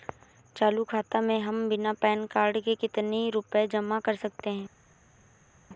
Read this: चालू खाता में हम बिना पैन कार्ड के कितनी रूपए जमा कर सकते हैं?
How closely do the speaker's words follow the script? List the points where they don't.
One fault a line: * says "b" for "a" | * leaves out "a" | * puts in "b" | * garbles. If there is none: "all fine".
all fine